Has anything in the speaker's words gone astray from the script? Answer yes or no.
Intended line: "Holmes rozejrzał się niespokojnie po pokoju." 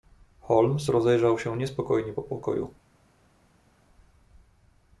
no